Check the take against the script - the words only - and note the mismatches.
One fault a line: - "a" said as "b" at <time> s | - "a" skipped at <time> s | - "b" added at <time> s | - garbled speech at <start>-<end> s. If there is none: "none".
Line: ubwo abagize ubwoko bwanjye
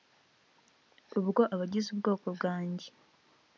none